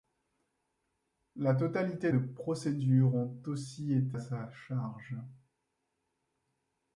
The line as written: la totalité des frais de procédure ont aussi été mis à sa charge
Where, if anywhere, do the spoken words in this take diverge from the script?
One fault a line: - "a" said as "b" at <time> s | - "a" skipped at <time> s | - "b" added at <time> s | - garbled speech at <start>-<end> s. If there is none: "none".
- "des frais" skipped at 2.1 s
- "mis" skipped at 4.2 s